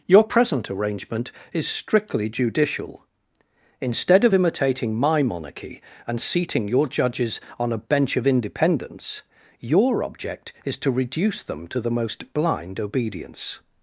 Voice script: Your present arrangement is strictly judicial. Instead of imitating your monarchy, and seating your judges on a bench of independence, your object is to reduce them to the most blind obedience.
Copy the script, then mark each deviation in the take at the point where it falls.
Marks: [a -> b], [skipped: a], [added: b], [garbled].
Your present arrangement is strictly judicial. Instead of imitating [your -> my] monarchy, and seating your judges on a bench of independence, your object is to reduce them to the most blind obedience.